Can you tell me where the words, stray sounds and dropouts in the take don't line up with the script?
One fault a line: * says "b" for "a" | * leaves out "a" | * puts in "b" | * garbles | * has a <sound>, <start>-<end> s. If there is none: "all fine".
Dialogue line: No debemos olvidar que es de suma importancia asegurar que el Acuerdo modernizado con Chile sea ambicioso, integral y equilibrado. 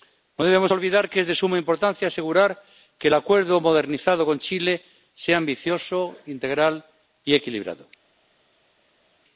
all fine